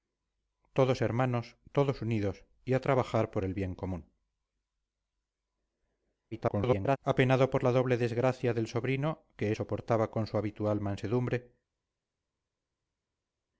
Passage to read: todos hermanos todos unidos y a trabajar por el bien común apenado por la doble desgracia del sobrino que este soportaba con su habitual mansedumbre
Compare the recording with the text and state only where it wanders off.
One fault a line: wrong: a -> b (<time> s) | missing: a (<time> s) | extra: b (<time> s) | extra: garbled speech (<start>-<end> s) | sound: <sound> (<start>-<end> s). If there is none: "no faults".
extra: garbled speech (6.3-7.0 s)
missing: este (9.5 s)